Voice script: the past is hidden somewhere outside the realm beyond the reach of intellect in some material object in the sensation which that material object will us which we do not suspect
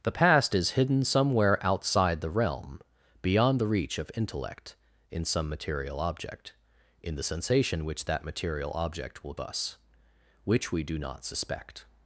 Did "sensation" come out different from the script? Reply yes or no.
no